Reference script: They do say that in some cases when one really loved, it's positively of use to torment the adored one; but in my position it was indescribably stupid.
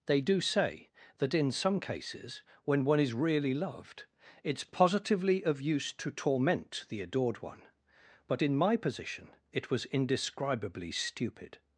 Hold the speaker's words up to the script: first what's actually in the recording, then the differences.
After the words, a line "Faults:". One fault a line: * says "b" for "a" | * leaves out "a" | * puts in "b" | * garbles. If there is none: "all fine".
They do say that in some cases when one is really loved, it's positively of use to torment the adored one; but in my position it was indescribably stupid.
Faults:
* puts in "is"